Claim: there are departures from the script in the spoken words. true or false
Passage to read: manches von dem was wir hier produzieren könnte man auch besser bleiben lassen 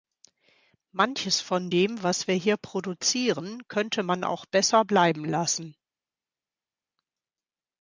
false